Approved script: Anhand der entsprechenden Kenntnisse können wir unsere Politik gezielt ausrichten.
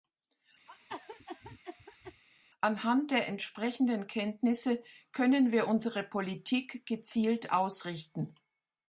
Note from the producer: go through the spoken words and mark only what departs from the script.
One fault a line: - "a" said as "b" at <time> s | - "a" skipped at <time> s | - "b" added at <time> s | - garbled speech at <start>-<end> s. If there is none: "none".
none